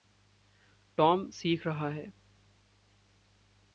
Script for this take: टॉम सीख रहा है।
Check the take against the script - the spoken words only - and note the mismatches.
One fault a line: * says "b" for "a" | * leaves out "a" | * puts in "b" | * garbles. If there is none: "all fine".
all fine